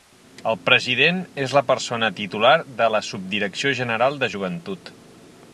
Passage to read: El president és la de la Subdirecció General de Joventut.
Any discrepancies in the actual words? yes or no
yes